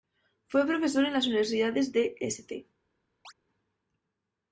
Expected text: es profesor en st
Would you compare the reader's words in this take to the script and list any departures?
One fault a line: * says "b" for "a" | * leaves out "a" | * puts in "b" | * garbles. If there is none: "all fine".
* says "fue" for "es"
* puts in "las universidades de"